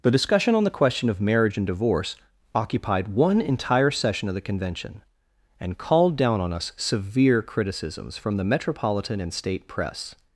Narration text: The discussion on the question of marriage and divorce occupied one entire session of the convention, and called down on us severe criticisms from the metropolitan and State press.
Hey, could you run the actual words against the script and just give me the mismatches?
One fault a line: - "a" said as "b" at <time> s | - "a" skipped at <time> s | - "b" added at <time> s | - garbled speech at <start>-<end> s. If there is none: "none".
none